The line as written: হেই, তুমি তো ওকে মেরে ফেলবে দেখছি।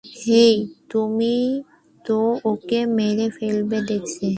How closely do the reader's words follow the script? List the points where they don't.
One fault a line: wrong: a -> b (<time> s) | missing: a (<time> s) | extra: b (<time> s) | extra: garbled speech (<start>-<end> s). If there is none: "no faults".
no faults